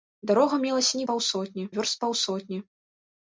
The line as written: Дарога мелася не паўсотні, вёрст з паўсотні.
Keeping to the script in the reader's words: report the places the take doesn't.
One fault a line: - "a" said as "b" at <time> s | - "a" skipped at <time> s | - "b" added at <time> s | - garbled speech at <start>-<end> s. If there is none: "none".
none